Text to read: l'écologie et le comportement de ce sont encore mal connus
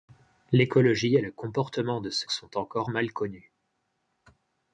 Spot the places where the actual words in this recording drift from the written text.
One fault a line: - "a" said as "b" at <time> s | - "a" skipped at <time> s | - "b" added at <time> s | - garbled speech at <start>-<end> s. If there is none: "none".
none